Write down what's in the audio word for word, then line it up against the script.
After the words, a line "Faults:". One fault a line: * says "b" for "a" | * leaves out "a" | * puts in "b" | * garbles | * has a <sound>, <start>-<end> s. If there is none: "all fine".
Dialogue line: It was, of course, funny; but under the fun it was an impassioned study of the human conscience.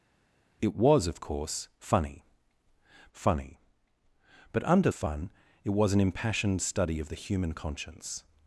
It was, of course, funny funny; but under fun it was an impassioned study of the human conscience.
Faults:
* puts in "funny"
* leaves out "the"